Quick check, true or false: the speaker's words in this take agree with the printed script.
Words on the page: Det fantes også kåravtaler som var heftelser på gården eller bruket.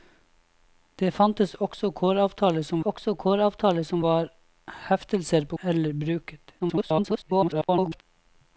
false